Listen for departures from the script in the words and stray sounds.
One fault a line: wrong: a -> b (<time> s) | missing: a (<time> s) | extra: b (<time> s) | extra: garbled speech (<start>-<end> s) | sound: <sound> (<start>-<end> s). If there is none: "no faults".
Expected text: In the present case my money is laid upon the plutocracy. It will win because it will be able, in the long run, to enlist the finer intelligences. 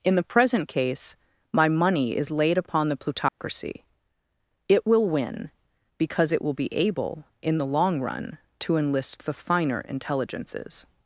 sound: dropout (3.3-3.4 s)